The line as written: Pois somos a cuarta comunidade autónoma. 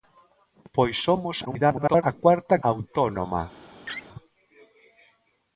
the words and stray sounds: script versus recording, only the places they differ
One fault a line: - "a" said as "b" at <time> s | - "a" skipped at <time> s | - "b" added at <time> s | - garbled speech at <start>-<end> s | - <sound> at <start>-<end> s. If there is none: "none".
- garbled speech at 1.4-2.0 s
- "comunidade" skipped at 2.5 s
- laugh at 3.8-4.1 s